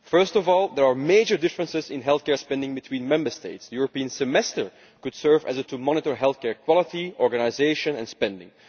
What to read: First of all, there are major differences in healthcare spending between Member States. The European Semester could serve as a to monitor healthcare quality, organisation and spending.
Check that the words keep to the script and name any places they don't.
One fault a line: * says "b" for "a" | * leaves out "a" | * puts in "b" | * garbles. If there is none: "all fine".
all fine